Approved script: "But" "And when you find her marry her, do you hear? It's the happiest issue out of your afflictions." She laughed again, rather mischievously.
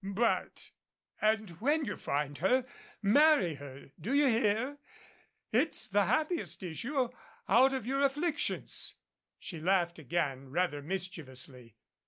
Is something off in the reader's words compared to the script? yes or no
no